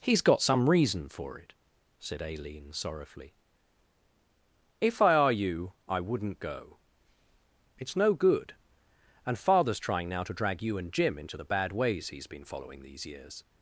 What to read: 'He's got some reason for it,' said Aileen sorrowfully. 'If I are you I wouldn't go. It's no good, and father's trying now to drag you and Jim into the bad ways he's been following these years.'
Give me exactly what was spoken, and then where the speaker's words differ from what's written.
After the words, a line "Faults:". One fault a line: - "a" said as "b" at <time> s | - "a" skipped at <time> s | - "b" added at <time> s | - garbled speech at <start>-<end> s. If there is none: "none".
'He's got some reason for it,' said Aileen sorrowfully. 'If I are you I wouldn't go. It's no good, and father's trying now to drag you and Jim into the bad ways he's been following these years.'
Faults:
none